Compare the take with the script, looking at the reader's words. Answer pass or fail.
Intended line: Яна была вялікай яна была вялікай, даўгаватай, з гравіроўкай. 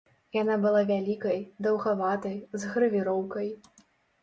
fail